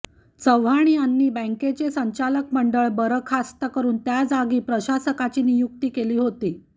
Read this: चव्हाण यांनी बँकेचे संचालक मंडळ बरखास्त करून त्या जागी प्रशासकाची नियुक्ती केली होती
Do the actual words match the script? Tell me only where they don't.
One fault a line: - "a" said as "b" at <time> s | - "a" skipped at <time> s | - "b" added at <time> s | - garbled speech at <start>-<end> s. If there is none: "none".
none